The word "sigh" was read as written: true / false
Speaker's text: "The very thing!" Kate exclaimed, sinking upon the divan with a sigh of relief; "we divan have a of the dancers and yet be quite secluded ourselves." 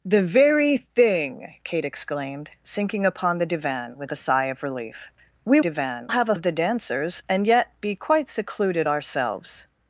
true